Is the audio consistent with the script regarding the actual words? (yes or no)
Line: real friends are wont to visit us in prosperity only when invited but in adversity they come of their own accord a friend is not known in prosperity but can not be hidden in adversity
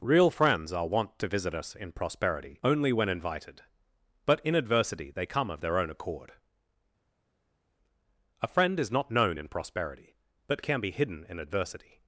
no